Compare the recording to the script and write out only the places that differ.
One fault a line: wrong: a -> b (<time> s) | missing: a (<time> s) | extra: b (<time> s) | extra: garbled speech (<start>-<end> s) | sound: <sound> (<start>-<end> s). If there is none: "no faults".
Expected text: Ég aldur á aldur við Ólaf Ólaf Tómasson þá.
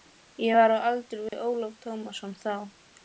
wrong: aldur -> var (0.6 s)
sound: dropout (1.3-1.3 s)
missing: Ólaf (1.8 s)